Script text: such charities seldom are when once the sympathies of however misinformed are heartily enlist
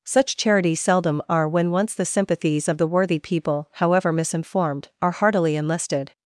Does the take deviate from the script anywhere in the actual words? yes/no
yes